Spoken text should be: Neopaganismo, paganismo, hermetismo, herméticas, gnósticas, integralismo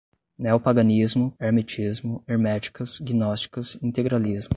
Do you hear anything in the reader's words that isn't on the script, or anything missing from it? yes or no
yes